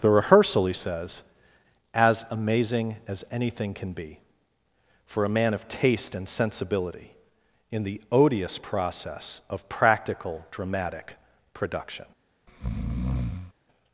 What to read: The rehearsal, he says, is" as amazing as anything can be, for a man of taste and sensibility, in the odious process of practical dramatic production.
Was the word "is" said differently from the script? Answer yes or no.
yes